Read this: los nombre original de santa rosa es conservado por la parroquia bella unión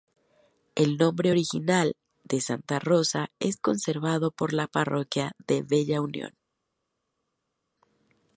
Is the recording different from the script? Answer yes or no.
yes